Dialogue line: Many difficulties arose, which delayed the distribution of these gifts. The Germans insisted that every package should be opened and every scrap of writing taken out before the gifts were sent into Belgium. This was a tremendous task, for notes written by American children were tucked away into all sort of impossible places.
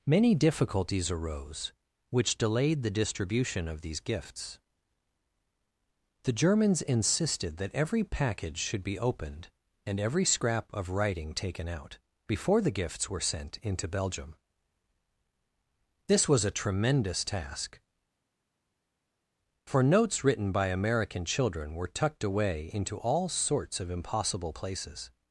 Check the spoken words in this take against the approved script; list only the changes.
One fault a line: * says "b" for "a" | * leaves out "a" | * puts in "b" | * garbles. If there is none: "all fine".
* says "sorts" for "sort"